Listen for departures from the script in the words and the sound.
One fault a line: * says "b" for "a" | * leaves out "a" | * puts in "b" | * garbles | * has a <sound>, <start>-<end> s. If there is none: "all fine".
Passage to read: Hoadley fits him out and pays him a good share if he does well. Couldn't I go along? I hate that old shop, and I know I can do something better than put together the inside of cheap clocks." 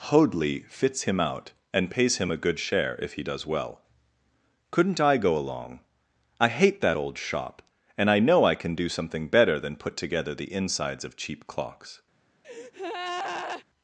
* says "insides" for "inside"
* has a breath, 12.4-13.6 s